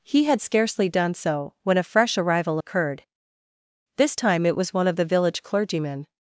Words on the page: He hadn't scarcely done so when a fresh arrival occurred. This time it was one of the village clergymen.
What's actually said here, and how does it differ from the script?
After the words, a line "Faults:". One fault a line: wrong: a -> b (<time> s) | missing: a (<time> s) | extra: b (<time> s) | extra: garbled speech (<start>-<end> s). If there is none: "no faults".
He had scarcely done so when a fresh arrival occurred. This time it was one of the village clergymen.
Faults:
wrong: hadn't -> had (0.2 s)